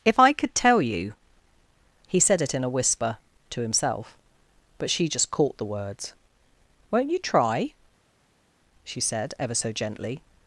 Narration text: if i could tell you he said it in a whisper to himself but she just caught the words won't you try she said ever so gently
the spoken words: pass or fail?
pass